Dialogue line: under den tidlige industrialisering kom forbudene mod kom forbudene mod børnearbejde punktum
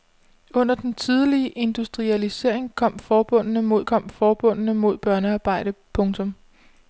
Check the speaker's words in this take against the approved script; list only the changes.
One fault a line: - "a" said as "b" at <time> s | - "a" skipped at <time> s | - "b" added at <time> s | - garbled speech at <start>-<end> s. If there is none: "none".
none